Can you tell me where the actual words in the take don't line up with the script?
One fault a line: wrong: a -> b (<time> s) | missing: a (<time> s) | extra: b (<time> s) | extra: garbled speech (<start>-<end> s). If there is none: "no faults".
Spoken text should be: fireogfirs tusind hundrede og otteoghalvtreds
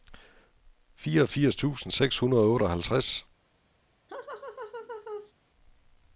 extra: seks (1.9 s)